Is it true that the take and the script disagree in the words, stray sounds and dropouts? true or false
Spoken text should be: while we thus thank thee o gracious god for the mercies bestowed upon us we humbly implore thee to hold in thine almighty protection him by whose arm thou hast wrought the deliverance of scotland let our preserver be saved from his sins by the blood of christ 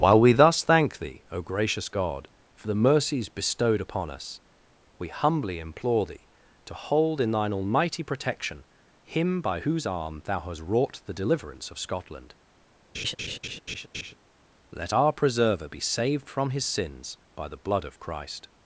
true